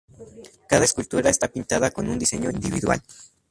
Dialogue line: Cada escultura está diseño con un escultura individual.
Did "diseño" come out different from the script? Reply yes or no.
yes